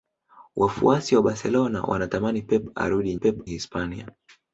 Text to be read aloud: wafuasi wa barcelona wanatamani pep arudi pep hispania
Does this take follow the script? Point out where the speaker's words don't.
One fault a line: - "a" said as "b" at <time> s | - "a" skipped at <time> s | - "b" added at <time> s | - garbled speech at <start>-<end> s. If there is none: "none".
none